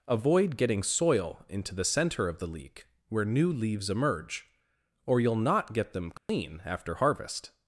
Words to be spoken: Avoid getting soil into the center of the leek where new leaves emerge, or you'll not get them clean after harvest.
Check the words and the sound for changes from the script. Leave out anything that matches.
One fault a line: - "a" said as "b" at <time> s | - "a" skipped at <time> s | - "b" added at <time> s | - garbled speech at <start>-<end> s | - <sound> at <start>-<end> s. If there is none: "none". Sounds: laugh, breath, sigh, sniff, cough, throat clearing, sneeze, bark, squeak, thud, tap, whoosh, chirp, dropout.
- dropout at 6.2-6.3 s